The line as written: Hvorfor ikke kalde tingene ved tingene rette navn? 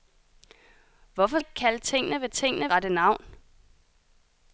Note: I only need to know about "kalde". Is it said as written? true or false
true